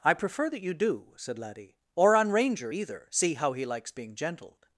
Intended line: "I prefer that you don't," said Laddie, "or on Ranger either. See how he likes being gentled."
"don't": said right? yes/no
no